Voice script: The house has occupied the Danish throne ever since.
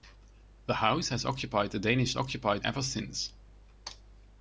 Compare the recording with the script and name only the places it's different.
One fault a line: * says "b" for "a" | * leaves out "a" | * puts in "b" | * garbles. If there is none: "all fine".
* says "occupied" for "throne"